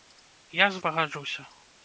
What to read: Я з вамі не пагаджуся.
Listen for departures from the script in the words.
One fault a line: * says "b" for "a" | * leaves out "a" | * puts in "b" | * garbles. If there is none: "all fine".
* leaves out "вамі не"